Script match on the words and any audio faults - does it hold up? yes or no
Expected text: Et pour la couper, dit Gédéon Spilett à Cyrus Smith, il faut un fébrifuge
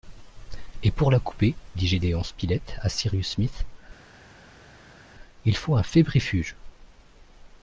yes